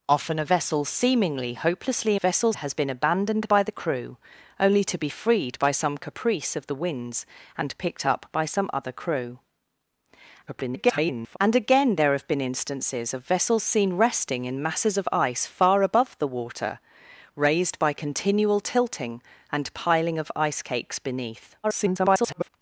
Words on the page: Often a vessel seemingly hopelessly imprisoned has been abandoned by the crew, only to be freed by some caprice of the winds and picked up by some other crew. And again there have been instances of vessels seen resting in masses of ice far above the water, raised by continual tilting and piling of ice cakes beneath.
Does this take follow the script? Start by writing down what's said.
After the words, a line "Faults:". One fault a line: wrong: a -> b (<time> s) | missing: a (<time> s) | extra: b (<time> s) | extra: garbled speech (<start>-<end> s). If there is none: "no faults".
Often a vessel seemingly hopelessly vessels has been abandoned by the crew, only to be freed by some caprice of the winds and picked up by some other crew. [garbled] And again there have been instances of vessels seen resting in masses of ice far above the water, raised by continual tilting and piling of ice cakes beneath. [garbled]
Faults:
wrong: imprisoned -> vessels (2.2 s)
extra: garbled speech (10.5-11.4 s)
extra: garbled speech (21.6-22.5 s)